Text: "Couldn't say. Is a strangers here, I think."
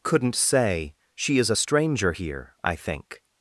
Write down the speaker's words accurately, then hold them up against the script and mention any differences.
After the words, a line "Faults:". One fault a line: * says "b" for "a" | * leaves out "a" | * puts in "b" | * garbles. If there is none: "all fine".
"Couldn't say. She is a stranger here, I think."
Faults:
* puts in "She"
* says "stranger" for "strangers"